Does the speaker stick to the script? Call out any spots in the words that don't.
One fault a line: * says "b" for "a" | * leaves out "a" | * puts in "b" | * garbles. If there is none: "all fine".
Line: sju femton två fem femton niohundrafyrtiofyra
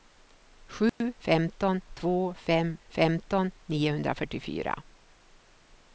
all fine